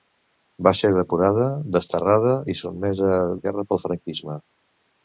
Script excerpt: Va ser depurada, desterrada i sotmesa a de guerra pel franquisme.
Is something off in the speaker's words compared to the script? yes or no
no